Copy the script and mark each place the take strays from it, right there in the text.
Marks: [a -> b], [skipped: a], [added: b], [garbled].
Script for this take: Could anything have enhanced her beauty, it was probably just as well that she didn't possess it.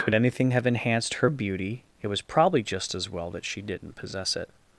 Could anything have enhanced her beauty, it was probably just as well that she didn't possess it.